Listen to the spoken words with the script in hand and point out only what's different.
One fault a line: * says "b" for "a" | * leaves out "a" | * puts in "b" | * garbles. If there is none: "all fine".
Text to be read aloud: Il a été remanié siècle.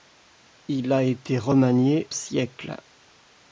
all fine